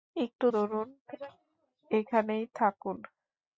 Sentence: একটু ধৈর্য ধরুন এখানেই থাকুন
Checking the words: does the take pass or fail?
fail